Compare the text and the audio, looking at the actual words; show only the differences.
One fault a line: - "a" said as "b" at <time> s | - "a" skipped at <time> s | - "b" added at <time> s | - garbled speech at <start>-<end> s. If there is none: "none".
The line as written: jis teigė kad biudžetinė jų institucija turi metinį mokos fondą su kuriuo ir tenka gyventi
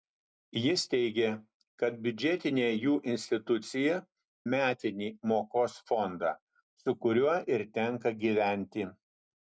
- "turi" skipped at 4.0 s